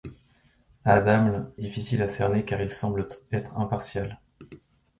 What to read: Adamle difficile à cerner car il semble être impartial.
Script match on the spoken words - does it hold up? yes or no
yes